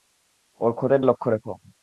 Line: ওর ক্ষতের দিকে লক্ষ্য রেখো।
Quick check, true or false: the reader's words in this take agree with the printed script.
false